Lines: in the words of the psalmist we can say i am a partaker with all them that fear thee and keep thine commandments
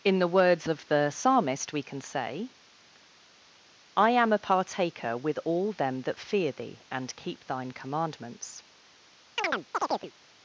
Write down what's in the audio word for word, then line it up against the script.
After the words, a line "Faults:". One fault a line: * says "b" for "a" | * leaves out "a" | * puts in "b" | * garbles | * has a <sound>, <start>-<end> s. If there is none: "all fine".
in the words of the psalmist we can say i am a partaker with all them that fear thee and keep thine commandments
Faults:
* has a chirp, 9.4-10.1 s